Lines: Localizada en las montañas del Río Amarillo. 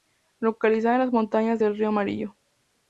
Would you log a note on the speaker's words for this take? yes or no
no